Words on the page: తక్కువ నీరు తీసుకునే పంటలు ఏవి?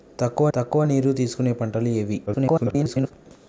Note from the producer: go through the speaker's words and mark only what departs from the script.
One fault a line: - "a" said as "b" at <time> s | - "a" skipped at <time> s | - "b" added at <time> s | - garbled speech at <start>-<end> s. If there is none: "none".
- "తక్కువ" added at 0.5 s
- garbled speech at 2.3-3.1 s